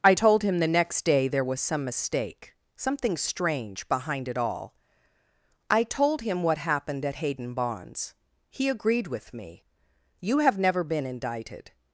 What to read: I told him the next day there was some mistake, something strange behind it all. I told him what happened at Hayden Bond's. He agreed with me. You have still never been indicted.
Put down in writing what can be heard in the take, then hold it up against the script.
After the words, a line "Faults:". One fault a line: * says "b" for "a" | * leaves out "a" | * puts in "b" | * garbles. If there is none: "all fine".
I told him the next day there was some mistake, something strange behind it all. I told him what happened at Hayden Bond's. He agreed with me. You have never been indicted.
Faults:
* leaves out "still"